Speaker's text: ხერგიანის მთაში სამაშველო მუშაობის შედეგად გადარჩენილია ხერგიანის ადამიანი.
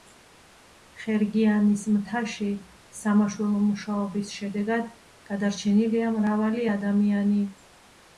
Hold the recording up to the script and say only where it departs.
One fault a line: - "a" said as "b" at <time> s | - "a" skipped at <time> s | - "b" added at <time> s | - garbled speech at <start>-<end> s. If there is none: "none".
- "ხერგიანის" said as "მრავალი" at 6.2 s